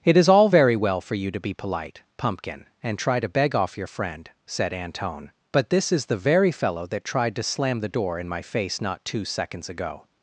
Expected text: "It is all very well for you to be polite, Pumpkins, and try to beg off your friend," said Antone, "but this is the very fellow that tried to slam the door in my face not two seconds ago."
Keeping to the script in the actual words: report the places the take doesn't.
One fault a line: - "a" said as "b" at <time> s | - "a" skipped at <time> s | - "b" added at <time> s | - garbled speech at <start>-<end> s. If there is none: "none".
- "Pumpkins" said as "Pumpkin" at 2.2 s